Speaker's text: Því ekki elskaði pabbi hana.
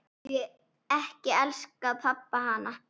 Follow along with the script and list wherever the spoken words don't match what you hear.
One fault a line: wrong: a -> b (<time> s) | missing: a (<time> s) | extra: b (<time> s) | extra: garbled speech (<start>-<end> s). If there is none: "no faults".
no faults